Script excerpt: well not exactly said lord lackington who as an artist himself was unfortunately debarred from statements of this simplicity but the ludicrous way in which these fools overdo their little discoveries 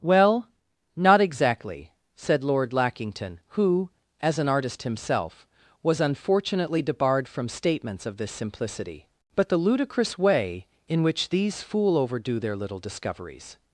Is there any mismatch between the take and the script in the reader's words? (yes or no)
yes